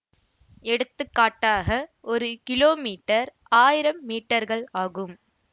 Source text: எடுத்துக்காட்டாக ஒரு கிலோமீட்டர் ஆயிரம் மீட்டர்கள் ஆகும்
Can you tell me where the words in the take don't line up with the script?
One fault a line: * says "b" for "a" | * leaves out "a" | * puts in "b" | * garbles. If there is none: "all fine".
all fine